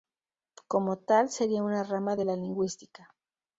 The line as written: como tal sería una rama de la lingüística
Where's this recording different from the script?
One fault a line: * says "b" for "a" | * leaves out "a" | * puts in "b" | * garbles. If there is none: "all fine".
all fine